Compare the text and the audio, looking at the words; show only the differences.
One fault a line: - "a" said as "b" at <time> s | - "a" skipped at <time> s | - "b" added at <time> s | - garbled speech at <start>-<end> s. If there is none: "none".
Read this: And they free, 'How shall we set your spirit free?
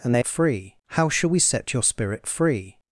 none